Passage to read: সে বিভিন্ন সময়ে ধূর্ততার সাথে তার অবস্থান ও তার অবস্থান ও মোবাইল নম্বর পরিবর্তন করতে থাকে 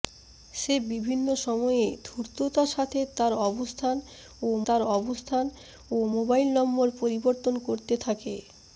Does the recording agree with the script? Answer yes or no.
yes